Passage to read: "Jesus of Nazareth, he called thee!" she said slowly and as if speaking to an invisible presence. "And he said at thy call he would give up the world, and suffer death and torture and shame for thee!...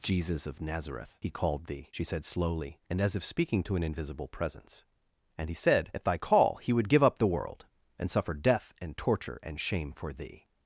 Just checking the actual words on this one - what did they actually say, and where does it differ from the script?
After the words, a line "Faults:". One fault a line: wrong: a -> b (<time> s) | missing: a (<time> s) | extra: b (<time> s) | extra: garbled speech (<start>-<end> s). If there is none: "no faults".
"Jesus of Nazareth, he called thee!" she said slowly and as if speaking to an invisible presence. "And he said at thy call he would give up the world, and suffer death and torture and shame for thee!...
Faults:
no faults